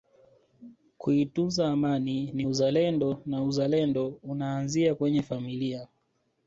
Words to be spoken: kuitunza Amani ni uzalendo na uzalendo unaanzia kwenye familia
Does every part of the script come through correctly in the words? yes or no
yes